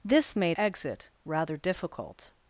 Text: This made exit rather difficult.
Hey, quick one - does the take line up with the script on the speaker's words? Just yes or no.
yes